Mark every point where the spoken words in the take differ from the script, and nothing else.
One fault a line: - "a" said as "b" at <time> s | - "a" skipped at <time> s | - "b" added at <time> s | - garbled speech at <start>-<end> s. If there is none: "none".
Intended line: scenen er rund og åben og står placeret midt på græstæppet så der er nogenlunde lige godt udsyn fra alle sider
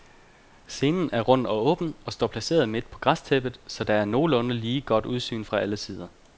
none